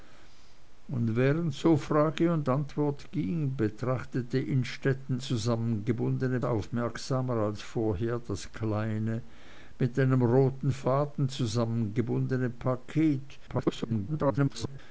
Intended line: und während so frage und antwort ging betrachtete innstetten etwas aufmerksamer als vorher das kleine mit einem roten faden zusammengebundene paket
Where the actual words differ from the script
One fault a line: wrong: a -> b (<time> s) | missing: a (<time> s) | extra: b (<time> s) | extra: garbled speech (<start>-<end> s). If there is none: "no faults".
wrong: etwas -> zusammengebundene (5.2 s)
extra: garbled speech (13.5-14.8 s)